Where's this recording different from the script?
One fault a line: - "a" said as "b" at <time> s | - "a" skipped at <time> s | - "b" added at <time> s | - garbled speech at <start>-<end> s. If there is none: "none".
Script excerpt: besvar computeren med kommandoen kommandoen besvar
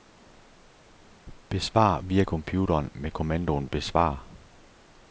- "via" added at 2.0 s
- "kommandoen" skipped at 3.7 s